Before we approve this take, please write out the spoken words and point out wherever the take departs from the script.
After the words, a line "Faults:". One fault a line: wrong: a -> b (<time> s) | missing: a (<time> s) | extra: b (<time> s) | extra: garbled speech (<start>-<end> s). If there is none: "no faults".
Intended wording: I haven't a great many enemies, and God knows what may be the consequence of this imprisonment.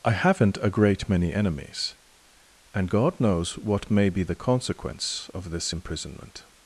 I haven't a great many enemies, and God knows what may be the consequence of this imprisonment.
Faults:
no faults